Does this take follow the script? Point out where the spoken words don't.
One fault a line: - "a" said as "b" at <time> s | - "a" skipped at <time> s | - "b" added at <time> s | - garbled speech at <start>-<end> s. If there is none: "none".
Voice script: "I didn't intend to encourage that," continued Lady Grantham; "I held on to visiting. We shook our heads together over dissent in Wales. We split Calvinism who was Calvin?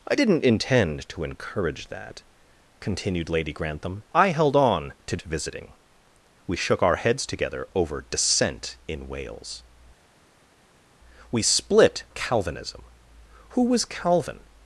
none